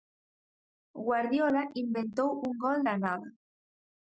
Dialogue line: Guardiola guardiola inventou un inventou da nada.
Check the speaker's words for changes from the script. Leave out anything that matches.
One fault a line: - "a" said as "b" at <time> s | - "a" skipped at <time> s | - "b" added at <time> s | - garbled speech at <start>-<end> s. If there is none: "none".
- "guardiola" skipped at 1.6 s
- "inventou" said as "gol" at 2.6 s